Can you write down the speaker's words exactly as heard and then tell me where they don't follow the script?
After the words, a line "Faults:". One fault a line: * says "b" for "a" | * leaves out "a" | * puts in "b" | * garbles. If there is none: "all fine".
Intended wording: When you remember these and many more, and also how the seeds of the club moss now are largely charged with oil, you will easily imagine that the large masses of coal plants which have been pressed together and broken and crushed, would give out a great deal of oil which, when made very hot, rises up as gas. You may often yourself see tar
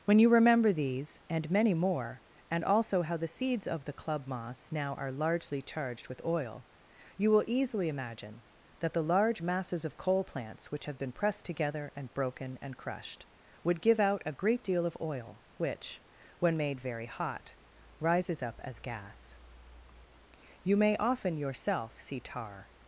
When you remember these and many more, and also how the seeds of the club moss now are largely charged with oil, you will easily imagine that the large masses of coal plants which have been pressed together and broken and crushed, would give out a great deal of oil which, when made very hot, rises up as gas. You may often yourself see tar
Faults:
all fine